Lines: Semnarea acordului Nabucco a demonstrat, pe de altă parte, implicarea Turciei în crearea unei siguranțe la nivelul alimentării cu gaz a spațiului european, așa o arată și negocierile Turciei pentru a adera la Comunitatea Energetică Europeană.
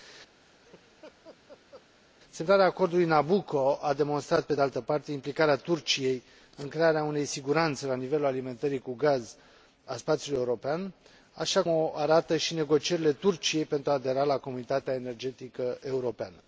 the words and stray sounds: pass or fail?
fail